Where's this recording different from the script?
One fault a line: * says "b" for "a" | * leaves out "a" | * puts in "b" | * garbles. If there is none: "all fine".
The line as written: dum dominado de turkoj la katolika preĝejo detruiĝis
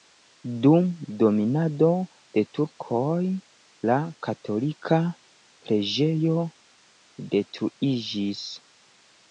all fine